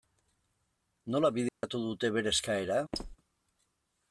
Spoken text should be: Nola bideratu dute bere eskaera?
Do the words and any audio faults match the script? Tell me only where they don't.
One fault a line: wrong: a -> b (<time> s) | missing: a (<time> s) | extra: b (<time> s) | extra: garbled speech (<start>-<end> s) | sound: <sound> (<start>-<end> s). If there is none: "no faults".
sound: dropout (1.5-1.6 s)
sound: squeak (2.9-3.2 s)